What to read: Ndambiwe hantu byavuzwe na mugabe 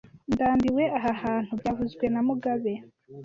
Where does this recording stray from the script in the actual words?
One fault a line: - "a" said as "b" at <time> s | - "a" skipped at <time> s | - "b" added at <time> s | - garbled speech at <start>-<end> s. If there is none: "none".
- "aha" added at 1.0 s